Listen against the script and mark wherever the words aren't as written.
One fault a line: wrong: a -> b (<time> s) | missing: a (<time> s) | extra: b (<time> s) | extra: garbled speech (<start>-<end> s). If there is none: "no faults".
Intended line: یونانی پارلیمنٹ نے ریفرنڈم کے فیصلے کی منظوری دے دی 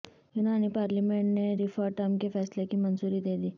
no faults